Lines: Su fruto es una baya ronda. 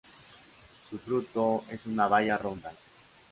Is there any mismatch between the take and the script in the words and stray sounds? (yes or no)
no